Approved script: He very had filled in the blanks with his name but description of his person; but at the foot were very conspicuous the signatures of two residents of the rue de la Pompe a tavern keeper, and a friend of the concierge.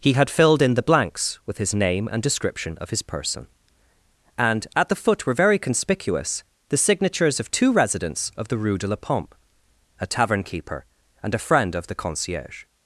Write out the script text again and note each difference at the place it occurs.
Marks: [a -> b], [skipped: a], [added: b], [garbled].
He [skipped: very] had filled in the blanks with his name [but -> and] description of his person; [but -> and] at the foot were very conspicuous the signatures of two residents of the rue de la Pompe a tavern keeper, and a friend of the concierge.